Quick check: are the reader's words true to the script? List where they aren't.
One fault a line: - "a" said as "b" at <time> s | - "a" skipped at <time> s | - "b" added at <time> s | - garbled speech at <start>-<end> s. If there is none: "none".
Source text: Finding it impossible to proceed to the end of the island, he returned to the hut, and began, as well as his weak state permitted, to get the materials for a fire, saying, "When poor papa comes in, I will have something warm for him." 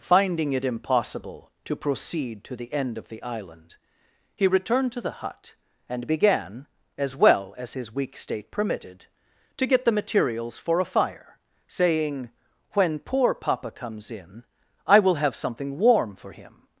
none